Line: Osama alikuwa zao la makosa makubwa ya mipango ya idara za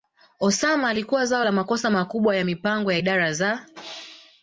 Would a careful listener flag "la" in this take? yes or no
no